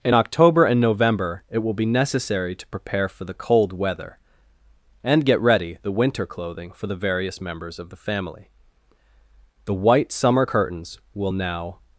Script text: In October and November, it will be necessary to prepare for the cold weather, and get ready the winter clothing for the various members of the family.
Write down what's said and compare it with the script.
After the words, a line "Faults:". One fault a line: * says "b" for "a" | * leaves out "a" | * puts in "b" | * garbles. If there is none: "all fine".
In October and November, it will be necessary to prepare for the cold weather, and get ready the winter clothing for the various members of the family. The white summer curtains will now
Faults:
* puts in "The white summer curtains will now"